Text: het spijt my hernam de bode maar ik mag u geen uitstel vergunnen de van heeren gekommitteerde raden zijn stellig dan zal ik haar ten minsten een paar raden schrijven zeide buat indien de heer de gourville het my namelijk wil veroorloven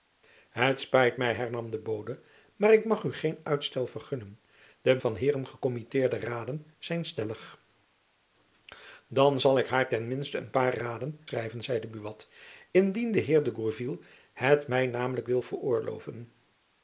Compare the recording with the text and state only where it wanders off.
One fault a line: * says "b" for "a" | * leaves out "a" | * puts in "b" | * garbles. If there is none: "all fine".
all fine